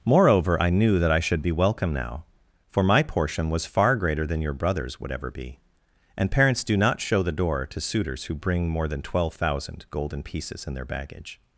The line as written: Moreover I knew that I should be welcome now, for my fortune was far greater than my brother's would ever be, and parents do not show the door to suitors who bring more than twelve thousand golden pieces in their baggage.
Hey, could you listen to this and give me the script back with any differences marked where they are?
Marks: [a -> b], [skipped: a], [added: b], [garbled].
Moreover I knew that I should be welcome now, for my [fortune -> portion] was far greater than [my -> your] brother's would ever be, and parents do not show the door to suitors who bring more than twelve thousand golden pieces in their baggage.